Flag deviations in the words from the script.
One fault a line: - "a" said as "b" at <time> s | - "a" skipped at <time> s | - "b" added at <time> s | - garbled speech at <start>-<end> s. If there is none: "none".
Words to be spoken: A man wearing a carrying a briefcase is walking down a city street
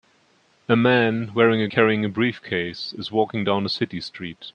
none